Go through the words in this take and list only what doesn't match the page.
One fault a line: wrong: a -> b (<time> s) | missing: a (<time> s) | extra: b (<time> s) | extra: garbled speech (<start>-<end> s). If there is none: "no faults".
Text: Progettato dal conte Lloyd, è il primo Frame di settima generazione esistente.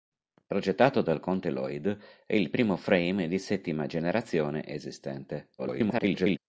extra: garbled speech (5.6-6.4 s)